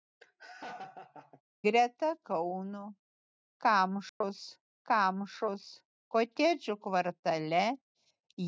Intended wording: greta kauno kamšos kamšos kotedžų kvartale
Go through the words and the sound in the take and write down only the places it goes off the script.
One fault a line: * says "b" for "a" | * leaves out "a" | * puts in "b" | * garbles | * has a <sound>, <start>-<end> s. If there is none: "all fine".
* has a laugh, 0.2-1.4 s
* has a dropout, 4.1-4.2 s